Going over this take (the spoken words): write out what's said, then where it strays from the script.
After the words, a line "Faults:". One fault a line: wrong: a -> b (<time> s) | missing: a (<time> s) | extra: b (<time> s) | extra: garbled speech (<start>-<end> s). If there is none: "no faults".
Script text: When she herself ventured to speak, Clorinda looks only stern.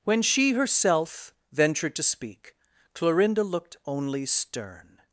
When she herself ventured to speak, Clorinda looked only stern.
Faults:
wrong: looks -> looked (3.4 s)